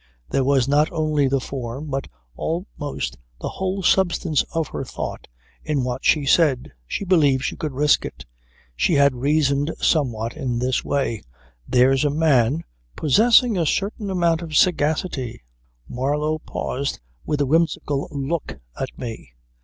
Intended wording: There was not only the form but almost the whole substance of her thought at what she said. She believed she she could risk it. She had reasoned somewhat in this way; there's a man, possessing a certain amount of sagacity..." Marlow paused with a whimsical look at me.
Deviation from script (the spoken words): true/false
true